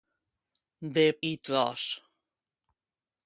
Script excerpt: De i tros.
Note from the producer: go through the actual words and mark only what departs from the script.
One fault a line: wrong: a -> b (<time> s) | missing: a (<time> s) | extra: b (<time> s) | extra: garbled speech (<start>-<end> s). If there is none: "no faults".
no faults